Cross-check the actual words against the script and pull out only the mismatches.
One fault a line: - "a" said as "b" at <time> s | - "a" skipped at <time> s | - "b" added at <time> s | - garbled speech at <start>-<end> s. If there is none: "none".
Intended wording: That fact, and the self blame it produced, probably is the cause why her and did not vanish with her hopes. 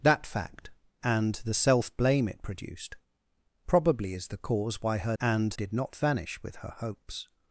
none